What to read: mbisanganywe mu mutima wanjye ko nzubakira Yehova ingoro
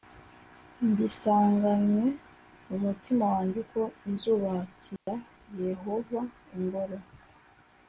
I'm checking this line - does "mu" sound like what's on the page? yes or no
yes